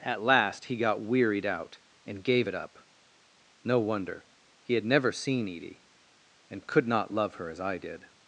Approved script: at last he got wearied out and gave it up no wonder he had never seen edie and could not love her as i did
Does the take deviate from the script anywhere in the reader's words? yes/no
no